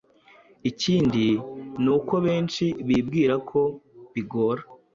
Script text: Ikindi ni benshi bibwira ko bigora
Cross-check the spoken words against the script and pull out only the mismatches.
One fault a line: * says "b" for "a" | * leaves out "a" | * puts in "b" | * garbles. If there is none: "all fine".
* puts in "uko"